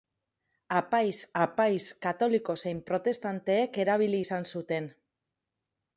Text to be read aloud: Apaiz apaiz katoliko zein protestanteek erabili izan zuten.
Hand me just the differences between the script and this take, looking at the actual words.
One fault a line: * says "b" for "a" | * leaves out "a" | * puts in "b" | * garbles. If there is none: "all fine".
all fine